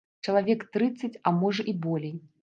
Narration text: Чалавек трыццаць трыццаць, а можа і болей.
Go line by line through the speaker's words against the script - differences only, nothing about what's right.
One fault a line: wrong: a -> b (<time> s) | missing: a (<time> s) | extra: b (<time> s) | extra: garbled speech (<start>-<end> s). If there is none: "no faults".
missing: трыццаць (1.2 s)